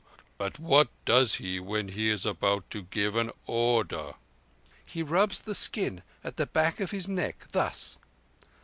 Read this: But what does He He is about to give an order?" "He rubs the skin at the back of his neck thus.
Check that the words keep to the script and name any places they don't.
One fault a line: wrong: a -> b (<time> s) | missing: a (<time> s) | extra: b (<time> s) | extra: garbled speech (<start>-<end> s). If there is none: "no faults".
extra: when (1.6 s)